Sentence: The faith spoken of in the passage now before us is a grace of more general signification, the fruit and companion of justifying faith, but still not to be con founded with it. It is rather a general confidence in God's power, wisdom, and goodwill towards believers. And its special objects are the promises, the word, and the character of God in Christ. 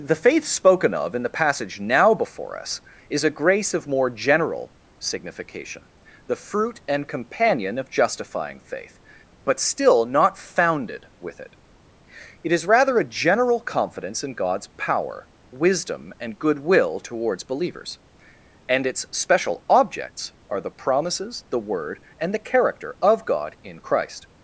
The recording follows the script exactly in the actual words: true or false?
false